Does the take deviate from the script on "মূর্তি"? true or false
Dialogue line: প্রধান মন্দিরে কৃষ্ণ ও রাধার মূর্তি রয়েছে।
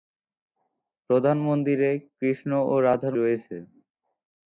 true